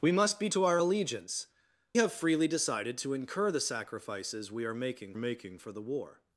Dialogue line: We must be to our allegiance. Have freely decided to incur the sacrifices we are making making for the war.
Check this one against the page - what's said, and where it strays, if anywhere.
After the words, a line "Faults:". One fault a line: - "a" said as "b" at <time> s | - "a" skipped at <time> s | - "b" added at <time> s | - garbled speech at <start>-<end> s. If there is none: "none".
We must be to our allegiance. Have freely decided to incur the sacrifices we are making making for the war.
Faults:
none